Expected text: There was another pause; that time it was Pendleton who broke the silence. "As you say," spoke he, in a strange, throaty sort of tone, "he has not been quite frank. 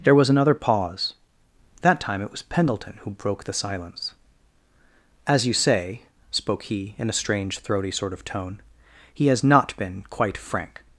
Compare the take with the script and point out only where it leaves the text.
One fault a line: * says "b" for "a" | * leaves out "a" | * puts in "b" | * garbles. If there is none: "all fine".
all fine